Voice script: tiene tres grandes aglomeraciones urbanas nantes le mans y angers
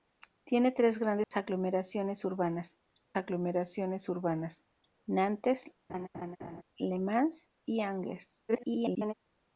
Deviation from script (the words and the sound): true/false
true